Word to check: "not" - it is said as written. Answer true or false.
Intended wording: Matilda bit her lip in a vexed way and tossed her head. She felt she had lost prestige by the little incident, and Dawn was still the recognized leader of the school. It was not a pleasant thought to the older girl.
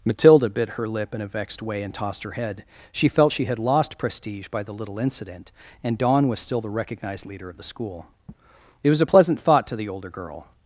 false